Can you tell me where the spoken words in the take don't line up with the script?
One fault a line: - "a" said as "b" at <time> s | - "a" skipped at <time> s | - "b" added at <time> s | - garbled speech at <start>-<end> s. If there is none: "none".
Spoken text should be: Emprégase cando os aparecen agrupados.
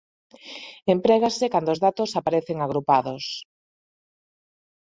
- "datos" added at 1.8 s